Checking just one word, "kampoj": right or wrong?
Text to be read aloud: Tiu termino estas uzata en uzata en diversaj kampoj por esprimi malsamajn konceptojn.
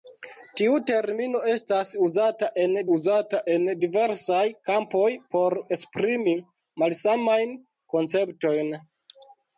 right